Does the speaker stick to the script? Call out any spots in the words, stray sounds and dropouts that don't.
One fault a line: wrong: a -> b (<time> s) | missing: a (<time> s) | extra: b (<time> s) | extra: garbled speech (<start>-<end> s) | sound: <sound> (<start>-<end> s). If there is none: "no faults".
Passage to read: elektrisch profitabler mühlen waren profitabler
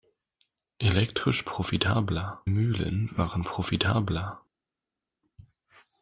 no faults